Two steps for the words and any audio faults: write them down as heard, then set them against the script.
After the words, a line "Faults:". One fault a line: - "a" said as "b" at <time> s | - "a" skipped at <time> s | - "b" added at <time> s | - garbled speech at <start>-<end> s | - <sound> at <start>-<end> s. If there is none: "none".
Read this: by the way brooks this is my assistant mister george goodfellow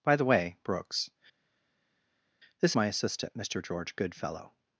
by the way brooks this my assistant mister george goodfellow
Faults:
- "is" skipped at 2.7 s